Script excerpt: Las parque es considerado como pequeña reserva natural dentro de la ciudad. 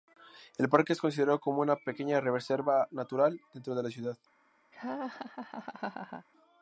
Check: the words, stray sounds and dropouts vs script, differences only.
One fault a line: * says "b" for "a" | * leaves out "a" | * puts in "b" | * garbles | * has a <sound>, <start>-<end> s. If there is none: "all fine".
* says "El" for "Las"
* puts in "una"
* has a laugh, 4.7-6.3 s